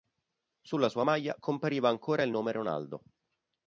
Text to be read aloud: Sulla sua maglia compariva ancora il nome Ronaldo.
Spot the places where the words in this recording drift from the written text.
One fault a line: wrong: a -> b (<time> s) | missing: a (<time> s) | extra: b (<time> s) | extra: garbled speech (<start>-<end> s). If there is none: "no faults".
no faults